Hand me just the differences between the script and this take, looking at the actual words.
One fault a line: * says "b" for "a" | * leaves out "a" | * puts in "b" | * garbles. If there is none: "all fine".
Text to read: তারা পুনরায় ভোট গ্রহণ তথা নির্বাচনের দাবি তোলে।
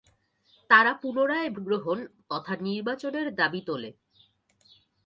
* leaves out "ভোট"